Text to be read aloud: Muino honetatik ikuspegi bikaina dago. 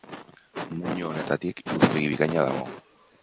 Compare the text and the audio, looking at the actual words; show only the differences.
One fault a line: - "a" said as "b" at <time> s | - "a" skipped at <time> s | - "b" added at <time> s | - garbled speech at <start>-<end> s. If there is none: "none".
none